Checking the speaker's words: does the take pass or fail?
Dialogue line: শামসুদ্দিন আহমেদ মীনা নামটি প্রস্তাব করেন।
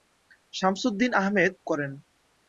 fail